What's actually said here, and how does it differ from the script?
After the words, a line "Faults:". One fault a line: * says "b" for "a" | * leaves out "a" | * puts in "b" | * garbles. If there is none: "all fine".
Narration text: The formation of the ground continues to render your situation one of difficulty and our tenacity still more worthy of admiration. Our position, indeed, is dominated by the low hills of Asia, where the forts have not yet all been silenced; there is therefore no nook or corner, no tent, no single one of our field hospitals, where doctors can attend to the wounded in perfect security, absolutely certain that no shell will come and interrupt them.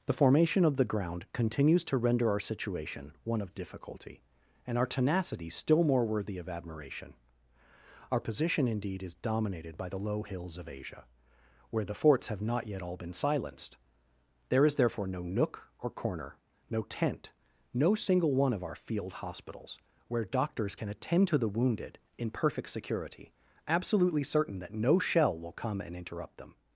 The formation of the ground continues to render our situation one of difficulty and our tenacity still more worthy of admiration. Our position, indeed, is dominated by the low hills of Asia, where the forts have not yet all been silenced; there is therefore no nook or corner, no tent, no single one of our field hospitals, where doctors can attend to the wounded in perfect security, absolutely certain that no shell will come and interrupt them.
Faults:
* says "our" for "your"